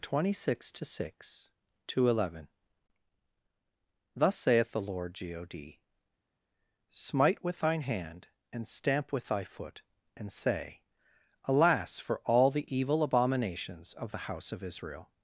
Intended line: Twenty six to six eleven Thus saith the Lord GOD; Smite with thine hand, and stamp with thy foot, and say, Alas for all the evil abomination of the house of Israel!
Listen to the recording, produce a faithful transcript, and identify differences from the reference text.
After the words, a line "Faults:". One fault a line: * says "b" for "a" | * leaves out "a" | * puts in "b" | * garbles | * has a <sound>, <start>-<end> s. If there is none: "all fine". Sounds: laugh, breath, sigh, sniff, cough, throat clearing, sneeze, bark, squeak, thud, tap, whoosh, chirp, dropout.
Twenty six to six to eleven Thus saith the Lord GOD; Smite with thine hand, and stamp with thy foot, and say, Alas for all the evil abominations of the house of Israel!
Faults:
* puts in "to"
* says "abominations" for "abomination"